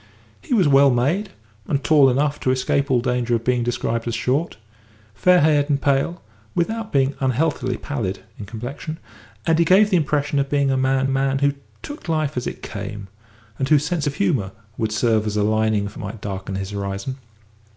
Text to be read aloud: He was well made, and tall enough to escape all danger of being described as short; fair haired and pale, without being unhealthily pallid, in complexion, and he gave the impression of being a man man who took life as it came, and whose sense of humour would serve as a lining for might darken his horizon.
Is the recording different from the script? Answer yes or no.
no